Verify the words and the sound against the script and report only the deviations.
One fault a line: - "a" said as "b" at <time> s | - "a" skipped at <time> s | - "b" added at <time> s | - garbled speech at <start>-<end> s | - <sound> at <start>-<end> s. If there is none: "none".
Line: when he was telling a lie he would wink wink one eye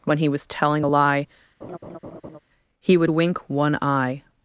- laugh at 1.6-2.4 s
- "wink" skipped at 3.5 s